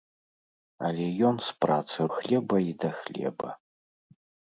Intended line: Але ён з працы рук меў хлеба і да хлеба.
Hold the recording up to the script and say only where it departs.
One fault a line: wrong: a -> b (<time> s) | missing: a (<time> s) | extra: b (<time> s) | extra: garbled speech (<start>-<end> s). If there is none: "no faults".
missing: рук меў (2.0 s)